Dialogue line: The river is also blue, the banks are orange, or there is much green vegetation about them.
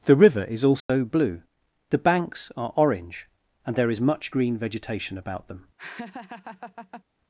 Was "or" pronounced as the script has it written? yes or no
no